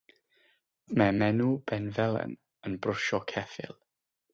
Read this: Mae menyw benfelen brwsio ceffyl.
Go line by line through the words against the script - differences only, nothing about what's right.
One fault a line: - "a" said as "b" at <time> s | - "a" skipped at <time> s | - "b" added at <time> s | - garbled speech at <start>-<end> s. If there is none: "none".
- "yn" added at 2.7 s